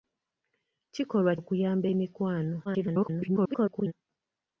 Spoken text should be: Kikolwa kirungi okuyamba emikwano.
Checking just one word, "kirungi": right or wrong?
wrong